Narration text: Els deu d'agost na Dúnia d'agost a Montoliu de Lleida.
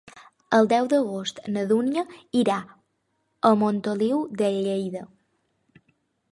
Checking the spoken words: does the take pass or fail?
fail